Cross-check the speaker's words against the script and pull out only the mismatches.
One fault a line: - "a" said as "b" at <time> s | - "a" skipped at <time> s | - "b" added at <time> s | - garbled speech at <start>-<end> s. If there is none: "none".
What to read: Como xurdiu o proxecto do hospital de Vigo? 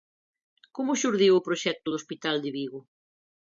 none